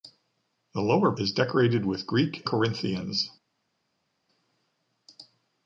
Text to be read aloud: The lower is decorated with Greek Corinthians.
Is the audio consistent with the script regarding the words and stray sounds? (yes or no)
yes